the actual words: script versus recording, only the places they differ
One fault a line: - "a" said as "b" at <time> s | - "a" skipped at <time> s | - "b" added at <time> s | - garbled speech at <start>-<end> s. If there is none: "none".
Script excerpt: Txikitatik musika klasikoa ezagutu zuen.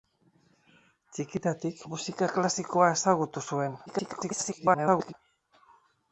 - garbled speech at 3.9-5.1 s